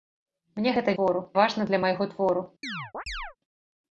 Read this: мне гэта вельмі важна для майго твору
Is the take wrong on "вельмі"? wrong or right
wrong